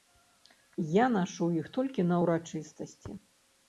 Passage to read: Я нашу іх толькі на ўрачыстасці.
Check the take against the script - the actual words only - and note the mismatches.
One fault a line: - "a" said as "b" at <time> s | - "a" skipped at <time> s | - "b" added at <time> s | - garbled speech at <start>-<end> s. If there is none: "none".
none